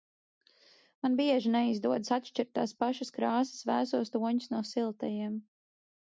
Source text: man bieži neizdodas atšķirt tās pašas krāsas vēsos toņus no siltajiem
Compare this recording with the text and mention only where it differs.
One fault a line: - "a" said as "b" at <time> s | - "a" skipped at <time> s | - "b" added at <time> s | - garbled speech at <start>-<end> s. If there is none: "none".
none